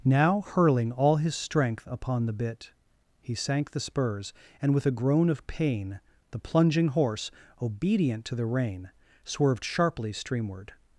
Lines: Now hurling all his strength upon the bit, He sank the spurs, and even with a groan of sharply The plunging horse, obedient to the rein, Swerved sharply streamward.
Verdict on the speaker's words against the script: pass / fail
fail